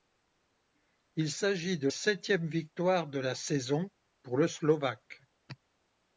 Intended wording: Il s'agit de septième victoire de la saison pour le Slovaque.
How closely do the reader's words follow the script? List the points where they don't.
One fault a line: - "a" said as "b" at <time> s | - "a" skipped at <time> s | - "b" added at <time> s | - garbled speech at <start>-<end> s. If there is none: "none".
none